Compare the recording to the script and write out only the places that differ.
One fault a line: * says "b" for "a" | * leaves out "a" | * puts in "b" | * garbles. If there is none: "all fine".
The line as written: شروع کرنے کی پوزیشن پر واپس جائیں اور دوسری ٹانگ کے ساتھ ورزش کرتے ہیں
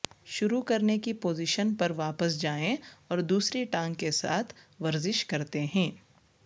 all fine